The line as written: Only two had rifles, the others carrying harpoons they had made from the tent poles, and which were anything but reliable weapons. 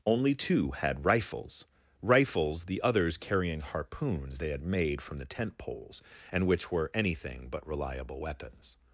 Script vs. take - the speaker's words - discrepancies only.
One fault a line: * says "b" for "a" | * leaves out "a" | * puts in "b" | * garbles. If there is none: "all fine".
* puts in "rifles"